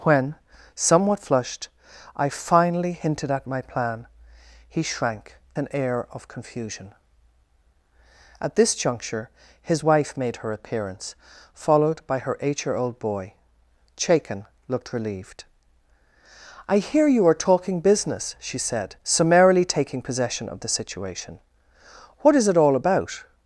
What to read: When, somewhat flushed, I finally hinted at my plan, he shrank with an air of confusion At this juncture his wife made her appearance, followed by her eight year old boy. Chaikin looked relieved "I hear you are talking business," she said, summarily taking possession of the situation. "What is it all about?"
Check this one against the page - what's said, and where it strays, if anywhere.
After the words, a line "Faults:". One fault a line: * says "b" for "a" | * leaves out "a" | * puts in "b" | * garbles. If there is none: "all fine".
When, somewhat flushed, I finally hinted at my plan, he shrank an air of confusion At this juncture his wife made her appearance, followed by her eight year old boy. Chaikin looked relieved "I hear you are talking business," she said, summarily taking possession of the situation. "What is it all about?"
Faults:
* leaves out "with"